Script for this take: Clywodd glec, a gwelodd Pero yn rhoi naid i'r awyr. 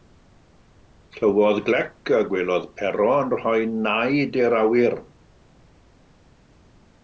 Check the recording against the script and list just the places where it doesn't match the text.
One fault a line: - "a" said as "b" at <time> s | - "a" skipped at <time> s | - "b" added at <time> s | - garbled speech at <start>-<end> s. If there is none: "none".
none